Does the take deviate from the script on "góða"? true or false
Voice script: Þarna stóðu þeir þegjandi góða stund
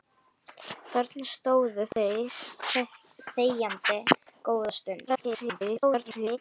false